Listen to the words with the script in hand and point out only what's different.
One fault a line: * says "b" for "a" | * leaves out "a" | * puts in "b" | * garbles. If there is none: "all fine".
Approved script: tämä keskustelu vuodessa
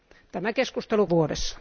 all fine